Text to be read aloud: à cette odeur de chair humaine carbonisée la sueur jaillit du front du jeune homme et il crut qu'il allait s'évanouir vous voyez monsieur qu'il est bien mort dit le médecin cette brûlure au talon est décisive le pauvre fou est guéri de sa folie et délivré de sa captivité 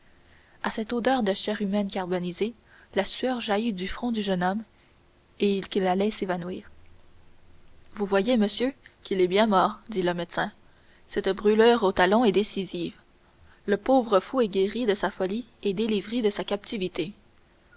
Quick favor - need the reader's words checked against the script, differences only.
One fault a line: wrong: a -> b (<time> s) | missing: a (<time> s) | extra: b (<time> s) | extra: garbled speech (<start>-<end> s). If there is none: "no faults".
missing: crut (5.7 s)